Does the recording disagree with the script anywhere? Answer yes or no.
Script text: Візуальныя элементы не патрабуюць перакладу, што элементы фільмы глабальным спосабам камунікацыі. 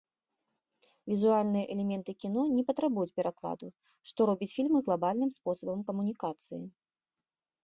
yes